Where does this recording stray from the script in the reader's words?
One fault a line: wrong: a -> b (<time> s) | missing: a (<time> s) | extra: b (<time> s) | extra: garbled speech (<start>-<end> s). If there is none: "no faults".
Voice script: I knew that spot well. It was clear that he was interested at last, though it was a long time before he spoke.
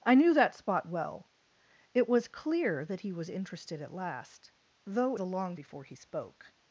missing: it was (5.2 s)
missing: time (5.6 s)